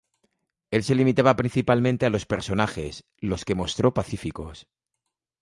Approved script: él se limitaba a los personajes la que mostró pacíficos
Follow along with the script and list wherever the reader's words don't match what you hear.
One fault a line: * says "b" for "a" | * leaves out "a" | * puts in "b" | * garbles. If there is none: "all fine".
* puts in "principalmente"
* says "los" for "la"